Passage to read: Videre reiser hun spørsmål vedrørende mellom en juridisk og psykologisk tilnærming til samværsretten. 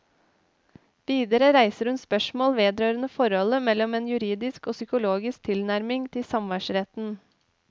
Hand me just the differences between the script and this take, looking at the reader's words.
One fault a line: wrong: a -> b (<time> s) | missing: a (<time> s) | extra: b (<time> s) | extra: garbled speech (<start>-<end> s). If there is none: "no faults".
extra: forholdet (3.2 s)